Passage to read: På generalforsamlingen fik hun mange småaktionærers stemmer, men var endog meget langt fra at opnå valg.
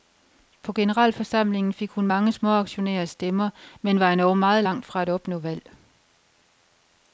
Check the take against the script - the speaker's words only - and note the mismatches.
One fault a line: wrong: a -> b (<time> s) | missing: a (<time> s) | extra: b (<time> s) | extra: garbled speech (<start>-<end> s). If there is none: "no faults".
no faults